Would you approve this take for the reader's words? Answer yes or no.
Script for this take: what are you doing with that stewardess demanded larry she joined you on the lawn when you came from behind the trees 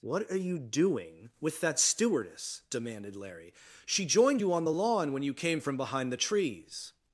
yes